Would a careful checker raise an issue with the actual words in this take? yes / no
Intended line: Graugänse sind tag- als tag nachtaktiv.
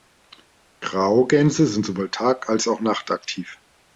yes